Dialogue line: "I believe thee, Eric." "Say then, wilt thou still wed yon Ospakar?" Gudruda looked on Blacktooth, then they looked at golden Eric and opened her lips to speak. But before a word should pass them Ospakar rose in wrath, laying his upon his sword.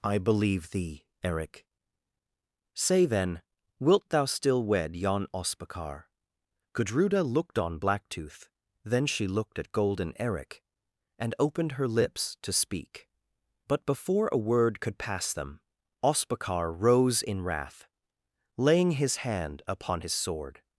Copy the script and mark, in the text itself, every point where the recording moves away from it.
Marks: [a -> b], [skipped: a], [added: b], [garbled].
"I believe thee, Eric." "Say then, wilt thou still wed yon Ospakar?" Gudruda looked on Blacktooth, then [they -> she] looked at golden Eric and opened her lips to speak. But before a word [should -> could] pass them Ospakar rose in wrath, laying his [added: hand] upon his sword.